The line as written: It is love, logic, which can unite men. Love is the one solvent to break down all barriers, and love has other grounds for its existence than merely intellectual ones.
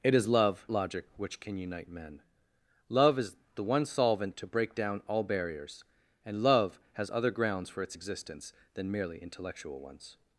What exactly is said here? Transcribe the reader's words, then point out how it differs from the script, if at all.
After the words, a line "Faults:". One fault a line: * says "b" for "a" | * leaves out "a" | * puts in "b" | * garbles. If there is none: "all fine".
It is love, logic, which can unite men. Love is the one solvent to break down all barriers, and love has other grounds for its existence than merely intellectual ones.
Faults:
all fine